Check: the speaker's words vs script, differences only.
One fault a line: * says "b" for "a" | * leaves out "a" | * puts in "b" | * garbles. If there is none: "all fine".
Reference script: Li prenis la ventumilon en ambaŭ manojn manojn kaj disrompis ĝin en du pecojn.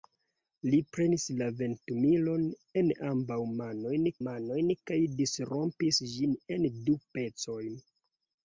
all fine